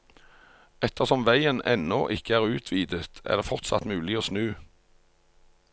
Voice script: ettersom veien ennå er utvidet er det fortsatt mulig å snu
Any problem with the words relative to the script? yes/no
yes